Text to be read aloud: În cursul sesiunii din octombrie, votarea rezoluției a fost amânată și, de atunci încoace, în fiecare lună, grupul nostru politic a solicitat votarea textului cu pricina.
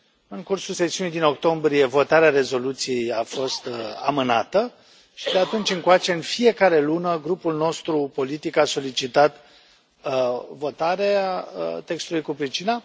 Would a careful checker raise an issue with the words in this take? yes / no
no